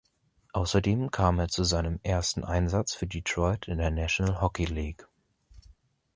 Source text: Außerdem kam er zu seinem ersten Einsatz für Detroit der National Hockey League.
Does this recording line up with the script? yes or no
no